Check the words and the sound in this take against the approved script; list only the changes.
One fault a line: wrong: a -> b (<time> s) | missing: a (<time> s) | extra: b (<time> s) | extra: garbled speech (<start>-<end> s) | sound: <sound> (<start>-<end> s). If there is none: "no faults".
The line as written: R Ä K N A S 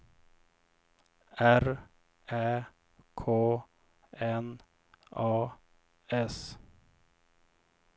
no faults